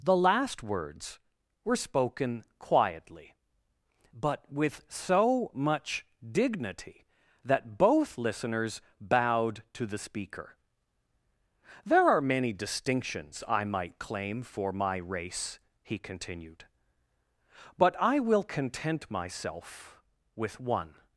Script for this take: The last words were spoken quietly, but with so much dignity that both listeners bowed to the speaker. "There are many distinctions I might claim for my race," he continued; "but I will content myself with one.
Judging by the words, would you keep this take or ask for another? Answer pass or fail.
pass